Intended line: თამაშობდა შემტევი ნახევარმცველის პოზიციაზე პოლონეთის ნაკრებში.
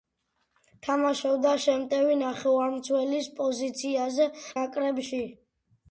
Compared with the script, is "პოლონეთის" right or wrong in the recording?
wrong